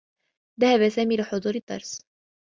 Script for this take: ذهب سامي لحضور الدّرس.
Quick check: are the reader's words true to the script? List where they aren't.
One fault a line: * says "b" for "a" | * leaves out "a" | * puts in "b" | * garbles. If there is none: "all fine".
all fine